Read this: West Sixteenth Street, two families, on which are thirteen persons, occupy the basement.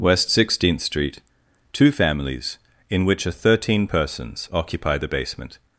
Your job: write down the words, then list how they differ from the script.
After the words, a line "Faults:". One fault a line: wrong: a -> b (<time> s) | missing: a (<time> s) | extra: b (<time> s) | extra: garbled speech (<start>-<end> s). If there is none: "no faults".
West Sixteenth Street, two families, in which are thirteen persons, occupy the basement.
Faults:
wrong: on -> in (2.9 s)